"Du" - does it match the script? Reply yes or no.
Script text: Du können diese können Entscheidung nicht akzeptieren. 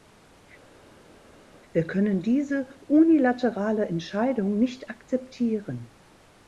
no